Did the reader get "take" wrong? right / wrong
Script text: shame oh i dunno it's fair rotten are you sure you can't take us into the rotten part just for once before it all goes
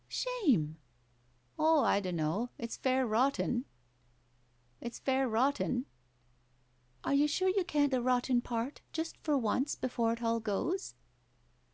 wrong